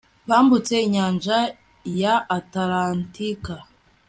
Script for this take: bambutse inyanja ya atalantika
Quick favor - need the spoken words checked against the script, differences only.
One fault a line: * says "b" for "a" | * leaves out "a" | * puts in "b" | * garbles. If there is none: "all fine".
all fine